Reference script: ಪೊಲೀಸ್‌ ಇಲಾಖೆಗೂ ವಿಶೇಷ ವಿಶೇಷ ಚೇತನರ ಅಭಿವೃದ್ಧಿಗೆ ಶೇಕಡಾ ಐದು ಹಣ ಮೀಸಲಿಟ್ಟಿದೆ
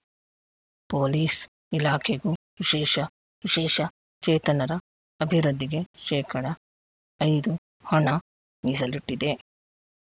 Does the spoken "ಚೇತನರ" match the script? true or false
true